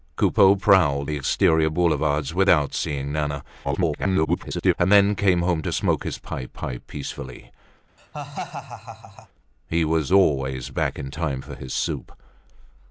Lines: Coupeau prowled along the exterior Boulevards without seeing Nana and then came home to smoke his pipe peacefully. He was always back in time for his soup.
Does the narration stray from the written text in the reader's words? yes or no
yes